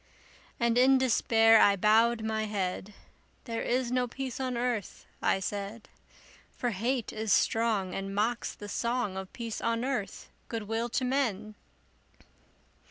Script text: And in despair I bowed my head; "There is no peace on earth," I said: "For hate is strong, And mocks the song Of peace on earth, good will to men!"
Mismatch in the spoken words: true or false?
false